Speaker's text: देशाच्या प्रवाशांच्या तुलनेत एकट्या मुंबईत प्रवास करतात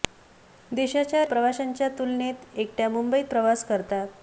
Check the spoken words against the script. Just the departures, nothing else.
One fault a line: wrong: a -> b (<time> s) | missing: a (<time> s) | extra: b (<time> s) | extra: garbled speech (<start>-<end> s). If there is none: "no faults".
no faults